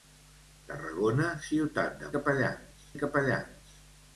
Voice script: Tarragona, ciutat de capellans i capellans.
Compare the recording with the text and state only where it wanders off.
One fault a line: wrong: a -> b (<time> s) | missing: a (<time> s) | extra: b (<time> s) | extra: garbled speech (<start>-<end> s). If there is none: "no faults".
no faults